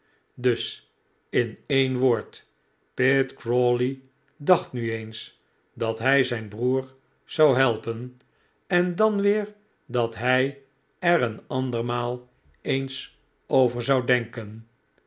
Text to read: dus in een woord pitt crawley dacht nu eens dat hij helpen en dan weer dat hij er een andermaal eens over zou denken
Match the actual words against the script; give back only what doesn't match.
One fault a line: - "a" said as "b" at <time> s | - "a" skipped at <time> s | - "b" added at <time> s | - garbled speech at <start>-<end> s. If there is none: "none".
- "zijn broer zou" added at 6.2 s